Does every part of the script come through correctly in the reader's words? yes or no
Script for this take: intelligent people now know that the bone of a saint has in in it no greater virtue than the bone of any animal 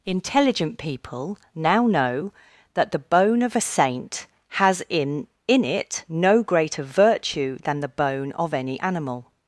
yes